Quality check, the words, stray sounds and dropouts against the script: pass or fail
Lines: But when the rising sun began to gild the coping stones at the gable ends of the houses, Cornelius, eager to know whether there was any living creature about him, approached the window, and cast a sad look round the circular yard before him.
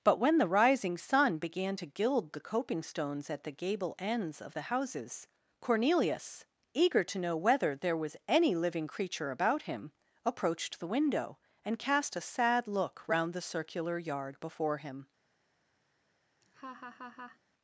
fail